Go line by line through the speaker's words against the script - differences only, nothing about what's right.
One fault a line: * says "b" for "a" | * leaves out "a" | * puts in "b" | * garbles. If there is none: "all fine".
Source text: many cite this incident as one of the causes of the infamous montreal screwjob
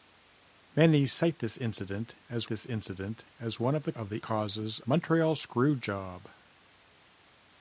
* puts in "this incident as"
* leaves out "causes"
* says "causes" for "infamous"